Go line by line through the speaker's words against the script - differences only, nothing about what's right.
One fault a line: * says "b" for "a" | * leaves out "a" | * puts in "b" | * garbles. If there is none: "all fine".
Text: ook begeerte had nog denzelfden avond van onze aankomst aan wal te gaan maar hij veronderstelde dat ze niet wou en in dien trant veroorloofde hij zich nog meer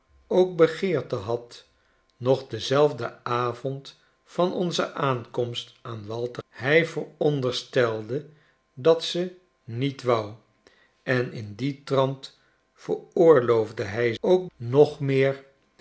* leaves out "gaan maar"
* says "ook" for "zich"